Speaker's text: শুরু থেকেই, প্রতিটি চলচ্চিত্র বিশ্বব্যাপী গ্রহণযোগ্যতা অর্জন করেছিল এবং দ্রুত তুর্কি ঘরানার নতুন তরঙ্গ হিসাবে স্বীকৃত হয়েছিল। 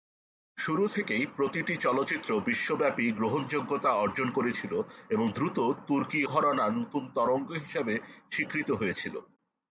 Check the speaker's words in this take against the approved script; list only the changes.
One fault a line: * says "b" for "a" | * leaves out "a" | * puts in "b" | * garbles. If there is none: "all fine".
all fine